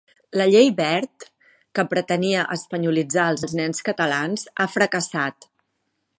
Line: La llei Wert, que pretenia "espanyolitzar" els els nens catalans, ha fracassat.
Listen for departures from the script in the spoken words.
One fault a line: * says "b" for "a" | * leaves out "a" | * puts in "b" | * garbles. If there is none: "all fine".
all fine